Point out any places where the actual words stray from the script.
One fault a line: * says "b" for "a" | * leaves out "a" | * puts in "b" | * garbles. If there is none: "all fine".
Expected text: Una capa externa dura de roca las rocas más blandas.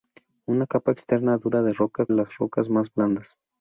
all fine